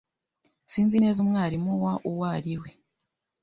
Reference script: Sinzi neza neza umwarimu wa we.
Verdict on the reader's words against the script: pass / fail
fail